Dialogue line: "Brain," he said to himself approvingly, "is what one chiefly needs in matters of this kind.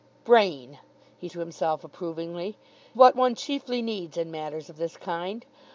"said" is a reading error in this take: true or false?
true